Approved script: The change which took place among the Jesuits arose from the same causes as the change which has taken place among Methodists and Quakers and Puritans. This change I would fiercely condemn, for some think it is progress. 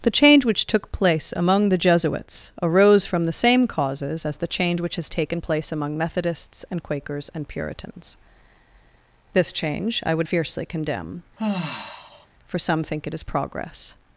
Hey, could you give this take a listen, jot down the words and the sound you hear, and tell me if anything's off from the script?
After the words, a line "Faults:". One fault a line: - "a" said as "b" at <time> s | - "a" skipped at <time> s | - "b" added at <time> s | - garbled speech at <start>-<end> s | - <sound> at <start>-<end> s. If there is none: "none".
The change which took place among the Jesuits arose from the same causes as the change which has taken place among Methodists and Quakers and Puritans. This change I would fiercely condemn, for some think it is progress.
Faults:
- sigh at 11.4-12.3 s